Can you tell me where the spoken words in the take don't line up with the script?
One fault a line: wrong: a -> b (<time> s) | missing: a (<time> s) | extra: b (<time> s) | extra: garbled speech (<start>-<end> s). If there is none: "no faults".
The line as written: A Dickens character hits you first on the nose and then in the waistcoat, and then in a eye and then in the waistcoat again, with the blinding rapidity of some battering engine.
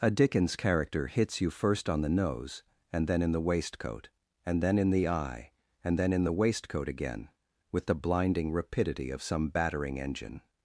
wrong: a -> the (4.9 s)